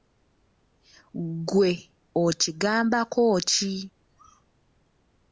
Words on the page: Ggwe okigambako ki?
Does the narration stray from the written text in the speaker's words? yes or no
no